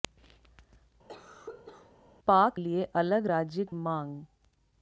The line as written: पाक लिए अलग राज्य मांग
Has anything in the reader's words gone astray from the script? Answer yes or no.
no